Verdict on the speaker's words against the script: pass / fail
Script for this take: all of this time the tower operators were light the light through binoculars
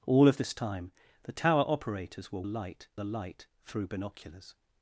pass